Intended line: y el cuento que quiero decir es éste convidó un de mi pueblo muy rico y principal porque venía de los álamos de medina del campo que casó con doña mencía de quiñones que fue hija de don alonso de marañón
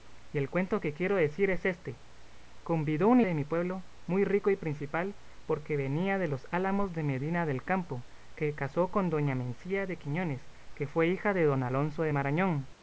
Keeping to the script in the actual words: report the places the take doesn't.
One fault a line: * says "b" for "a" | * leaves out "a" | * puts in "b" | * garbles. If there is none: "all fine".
all fine